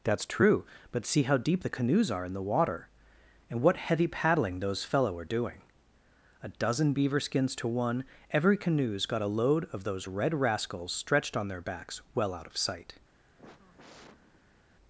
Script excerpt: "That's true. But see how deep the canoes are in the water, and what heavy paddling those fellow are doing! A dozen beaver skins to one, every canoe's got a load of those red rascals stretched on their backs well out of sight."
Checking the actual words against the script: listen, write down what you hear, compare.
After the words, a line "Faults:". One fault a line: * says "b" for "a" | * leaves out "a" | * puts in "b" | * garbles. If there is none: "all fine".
"That's true. But see how deep the canoes are in the water, and what heavy paddling those fellow are doing! A dozen beaver skins to one, every canoe's got a load of those red rascals stretched on their backs well out of sight."
Faults:
all fine